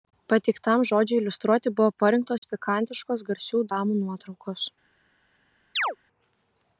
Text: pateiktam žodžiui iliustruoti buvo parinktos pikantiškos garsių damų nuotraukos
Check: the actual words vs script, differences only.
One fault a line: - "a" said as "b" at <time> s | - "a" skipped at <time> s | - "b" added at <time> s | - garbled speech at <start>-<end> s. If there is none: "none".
none